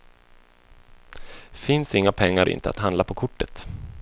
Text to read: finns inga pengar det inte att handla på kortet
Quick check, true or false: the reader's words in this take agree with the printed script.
true